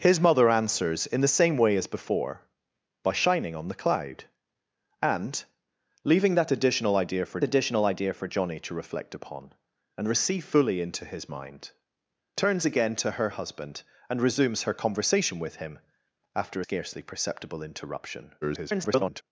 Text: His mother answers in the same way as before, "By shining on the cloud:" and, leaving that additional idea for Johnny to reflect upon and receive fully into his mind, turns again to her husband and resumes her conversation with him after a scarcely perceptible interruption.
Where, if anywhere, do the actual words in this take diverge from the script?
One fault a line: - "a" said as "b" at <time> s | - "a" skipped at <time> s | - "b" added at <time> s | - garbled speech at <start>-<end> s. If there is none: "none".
- "additional idea for" added at 7.4 s
- "a" skipped at 16.6 s
- garbled speech at 18.4-19.2 s